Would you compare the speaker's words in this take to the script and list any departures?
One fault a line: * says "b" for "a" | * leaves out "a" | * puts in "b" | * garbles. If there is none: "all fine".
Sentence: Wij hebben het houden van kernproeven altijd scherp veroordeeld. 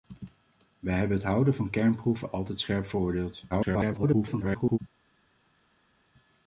* garbles